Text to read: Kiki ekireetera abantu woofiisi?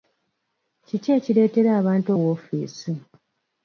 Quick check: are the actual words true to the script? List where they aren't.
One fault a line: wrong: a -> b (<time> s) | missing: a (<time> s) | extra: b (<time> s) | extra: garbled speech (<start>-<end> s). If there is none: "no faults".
no faults